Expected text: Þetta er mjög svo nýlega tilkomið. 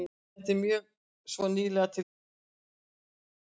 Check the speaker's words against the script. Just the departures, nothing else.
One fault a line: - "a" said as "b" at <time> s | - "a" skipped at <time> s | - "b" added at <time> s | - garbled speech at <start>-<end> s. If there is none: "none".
none